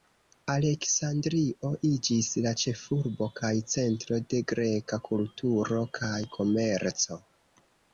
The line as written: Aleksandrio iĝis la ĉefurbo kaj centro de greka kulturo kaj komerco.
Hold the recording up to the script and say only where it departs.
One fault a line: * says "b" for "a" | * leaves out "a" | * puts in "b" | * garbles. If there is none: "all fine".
all fine